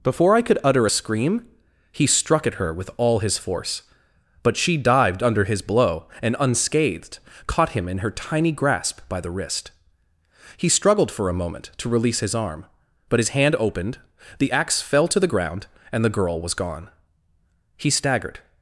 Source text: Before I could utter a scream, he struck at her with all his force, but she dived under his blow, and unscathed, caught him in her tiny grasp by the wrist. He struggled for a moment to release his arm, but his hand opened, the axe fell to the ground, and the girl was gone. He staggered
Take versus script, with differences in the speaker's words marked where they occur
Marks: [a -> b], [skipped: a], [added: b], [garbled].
Before I could utter a scream, he struck at her with all his force, but she dived under his blow, and unscathed, caught him in her tiny grasp by the wrist. He struggled for a moment to release his arm, but his hand opened, the axe fell to the ground, and the girl was gone. He staggered